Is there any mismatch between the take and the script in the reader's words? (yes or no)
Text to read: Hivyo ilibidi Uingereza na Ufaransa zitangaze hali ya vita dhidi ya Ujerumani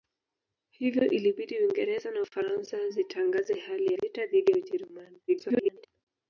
yes